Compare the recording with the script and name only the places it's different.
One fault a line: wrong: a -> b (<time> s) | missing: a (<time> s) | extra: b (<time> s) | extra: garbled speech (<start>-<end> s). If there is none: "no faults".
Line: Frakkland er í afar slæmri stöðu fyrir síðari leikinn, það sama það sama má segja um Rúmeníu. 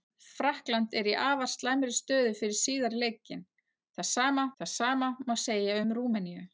no faults